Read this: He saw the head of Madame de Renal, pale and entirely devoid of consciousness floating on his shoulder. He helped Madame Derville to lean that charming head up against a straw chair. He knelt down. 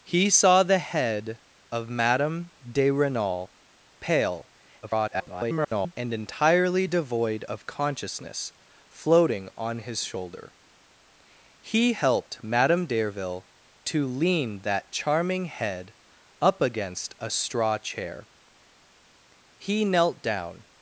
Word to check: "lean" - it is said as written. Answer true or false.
true